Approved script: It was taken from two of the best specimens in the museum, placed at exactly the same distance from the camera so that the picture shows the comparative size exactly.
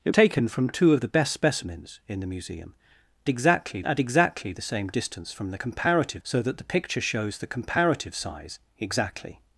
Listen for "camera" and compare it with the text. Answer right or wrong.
wrong